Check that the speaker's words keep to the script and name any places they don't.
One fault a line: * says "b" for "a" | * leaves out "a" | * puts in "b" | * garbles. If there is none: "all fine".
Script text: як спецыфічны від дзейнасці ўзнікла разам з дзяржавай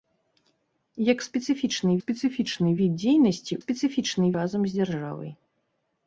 * puts in "спецыфічны"
* says "спецыфічны" for "ўзнікла"